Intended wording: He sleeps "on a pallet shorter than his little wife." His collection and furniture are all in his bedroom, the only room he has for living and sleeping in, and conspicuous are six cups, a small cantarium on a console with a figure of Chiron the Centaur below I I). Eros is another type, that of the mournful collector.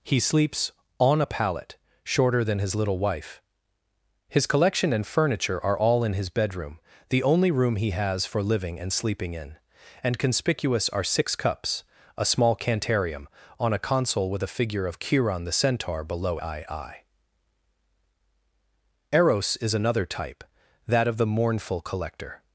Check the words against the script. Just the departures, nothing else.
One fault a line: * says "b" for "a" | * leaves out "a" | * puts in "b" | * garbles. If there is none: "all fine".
all fine